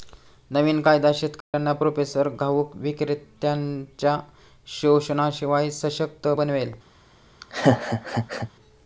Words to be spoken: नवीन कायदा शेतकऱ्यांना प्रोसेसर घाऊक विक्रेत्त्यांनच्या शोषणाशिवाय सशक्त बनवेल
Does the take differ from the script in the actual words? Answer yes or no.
no